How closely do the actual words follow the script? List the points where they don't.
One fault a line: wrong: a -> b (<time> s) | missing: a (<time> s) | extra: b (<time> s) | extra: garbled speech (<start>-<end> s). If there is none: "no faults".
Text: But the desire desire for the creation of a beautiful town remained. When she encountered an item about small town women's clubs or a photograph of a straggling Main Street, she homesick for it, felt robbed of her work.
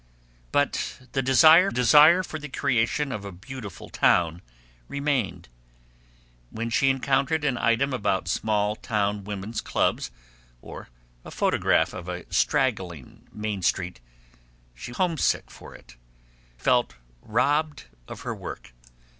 no faults